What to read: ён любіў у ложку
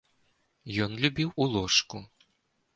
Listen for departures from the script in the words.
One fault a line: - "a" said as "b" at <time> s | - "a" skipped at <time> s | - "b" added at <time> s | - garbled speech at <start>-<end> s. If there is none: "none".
none